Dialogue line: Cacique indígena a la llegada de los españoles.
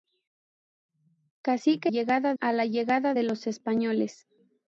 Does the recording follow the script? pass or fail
fail